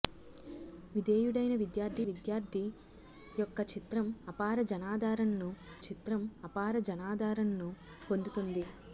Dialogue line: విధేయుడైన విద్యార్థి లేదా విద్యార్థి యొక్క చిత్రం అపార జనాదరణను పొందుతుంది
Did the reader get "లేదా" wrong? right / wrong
wrong